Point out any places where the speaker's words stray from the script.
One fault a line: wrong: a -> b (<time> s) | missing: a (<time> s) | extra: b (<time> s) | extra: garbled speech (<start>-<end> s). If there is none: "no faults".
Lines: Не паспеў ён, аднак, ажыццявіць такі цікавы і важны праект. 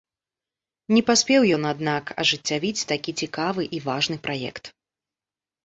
no faults